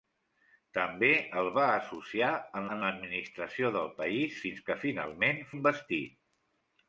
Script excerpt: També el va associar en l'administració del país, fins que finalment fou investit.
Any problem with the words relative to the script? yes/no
yes